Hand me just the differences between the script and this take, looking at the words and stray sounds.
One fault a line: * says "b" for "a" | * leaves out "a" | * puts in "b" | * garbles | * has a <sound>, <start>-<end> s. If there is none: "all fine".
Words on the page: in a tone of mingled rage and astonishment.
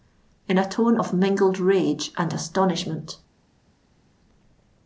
all fine